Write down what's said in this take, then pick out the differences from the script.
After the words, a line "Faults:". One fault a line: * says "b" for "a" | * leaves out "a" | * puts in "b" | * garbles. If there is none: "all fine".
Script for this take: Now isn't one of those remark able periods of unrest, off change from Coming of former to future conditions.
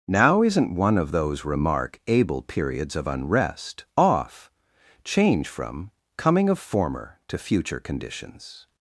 Now isn't one of those remark able periods of unrest, off change from Coming of former to future conditions.
Faults:
all fine